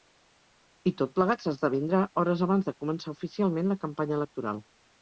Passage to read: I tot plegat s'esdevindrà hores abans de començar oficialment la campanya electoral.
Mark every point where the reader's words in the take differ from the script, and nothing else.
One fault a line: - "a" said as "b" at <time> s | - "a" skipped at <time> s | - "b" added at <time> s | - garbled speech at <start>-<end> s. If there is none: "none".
none